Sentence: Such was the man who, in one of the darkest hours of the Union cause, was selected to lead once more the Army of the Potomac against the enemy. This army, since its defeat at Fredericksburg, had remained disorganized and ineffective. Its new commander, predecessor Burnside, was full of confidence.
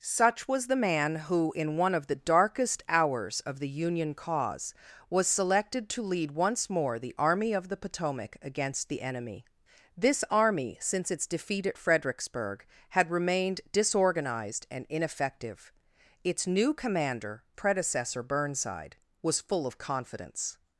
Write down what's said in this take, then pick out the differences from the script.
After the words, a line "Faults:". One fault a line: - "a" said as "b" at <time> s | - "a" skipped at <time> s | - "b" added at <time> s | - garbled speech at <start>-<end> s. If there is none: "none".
Such was the man who, in one of the darkest hours of the Union cause, was selected to lead once more the Army of the Potomac against the enemy. This army, since its defeat at Fredericksburg, had remained disorganized and ineffective. Its new commander, predecessor Burnside, was full of confidence.
Faults:
none